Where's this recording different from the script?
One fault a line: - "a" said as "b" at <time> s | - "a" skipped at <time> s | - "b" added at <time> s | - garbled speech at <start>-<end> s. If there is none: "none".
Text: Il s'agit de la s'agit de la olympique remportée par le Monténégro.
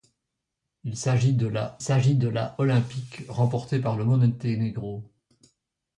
none